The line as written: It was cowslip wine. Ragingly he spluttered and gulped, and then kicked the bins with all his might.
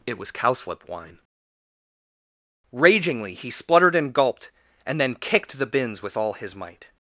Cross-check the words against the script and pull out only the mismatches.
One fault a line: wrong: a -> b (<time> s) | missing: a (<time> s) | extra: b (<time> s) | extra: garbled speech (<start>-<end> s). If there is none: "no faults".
no faults